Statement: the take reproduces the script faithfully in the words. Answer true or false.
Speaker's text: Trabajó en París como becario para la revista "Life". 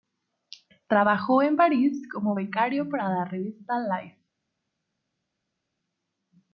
true